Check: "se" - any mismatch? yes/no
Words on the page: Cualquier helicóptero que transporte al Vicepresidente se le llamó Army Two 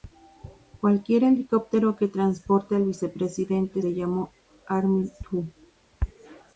yes